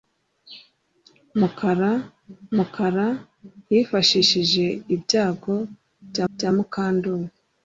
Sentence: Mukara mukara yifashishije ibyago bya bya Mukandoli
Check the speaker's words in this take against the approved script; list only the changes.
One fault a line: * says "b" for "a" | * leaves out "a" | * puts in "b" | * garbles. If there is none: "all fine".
all fine